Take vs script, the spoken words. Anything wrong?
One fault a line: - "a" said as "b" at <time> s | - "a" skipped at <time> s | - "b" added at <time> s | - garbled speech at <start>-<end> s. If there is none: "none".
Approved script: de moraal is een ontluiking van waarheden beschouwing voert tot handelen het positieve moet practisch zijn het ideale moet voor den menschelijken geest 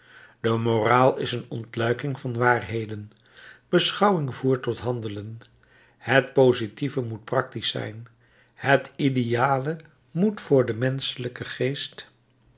none